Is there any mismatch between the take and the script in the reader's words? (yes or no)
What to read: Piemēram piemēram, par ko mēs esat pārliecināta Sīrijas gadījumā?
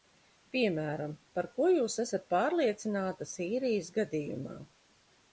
yes